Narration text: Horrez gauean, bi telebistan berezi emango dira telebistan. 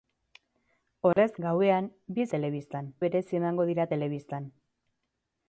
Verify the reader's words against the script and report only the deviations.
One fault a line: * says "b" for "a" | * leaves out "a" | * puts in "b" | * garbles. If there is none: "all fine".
all fine